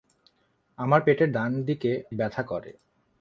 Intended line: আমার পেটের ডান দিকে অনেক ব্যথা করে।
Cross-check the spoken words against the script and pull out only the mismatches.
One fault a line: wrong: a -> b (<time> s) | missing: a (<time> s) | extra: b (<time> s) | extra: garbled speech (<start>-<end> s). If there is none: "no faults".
missing: অনেক (1.9 s)